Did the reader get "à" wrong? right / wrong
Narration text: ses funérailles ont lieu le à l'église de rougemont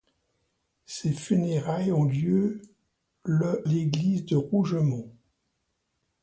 wrong